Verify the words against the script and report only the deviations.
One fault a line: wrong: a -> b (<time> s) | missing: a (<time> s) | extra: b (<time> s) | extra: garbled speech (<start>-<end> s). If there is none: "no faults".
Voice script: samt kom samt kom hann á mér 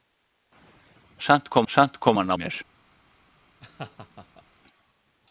no faults